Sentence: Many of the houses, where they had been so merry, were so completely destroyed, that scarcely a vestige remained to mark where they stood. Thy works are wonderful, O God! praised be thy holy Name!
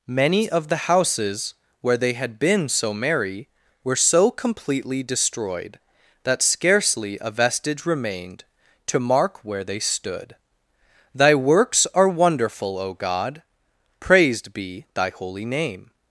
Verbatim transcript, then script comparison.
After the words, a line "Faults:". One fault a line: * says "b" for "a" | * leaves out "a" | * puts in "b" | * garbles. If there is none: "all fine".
Many of the houses, where they had been so merry, were so completely destroyed, that scarcely a vestige remained to mark where they stood. Thy works are wonderful, O God! praised be thy holy Name!
Faults:
all fine